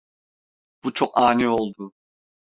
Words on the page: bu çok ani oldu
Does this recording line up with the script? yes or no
yes